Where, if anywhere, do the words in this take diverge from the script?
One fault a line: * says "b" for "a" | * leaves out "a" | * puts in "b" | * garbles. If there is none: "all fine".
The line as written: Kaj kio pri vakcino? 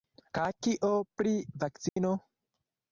all fine